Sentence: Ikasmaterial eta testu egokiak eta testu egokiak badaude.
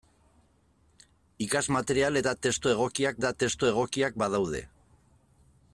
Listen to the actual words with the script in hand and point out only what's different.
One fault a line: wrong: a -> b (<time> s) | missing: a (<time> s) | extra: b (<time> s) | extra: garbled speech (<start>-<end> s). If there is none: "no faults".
no faults